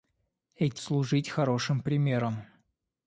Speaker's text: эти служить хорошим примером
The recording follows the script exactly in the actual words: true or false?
true